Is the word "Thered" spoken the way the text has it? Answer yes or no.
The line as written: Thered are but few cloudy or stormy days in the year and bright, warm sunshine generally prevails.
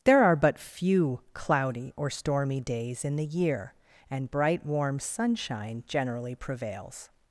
no